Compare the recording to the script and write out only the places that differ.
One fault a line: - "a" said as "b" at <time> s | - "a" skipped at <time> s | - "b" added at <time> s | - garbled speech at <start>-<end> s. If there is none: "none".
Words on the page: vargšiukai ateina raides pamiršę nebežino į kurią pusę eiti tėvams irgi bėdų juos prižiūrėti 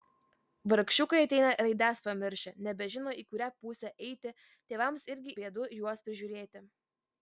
none